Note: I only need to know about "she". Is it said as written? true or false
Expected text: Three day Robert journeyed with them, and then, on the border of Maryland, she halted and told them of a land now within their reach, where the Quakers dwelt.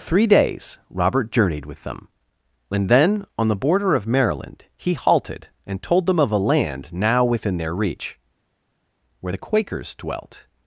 false